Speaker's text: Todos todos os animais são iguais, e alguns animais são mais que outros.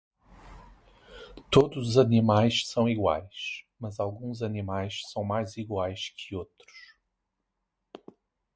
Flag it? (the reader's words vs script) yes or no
yes